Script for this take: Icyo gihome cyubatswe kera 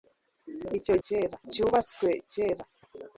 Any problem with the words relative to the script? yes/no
yes